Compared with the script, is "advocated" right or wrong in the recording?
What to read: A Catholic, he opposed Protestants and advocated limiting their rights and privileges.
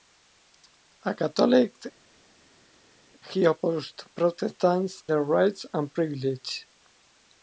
wrong